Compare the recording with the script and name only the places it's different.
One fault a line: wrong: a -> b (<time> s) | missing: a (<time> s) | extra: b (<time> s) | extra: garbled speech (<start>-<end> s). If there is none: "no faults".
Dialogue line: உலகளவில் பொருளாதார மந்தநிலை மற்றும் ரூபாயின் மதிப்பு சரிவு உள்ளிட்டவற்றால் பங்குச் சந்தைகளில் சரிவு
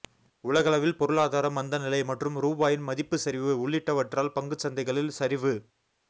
no faults